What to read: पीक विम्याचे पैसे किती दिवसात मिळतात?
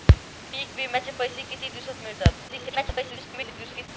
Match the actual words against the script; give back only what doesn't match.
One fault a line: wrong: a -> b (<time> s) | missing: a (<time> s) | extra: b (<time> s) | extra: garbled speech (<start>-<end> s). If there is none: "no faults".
extra: garbled speech (2.5-3.9 s)